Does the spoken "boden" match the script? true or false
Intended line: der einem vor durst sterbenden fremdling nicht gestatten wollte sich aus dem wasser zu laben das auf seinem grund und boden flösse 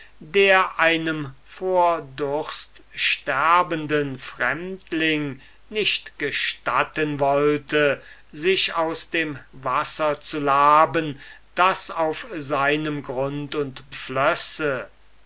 false